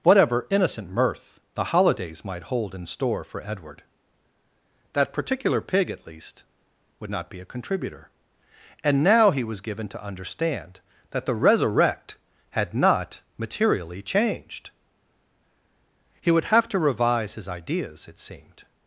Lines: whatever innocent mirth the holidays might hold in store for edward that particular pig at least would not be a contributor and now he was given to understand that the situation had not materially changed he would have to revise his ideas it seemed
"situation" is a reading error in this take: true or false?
true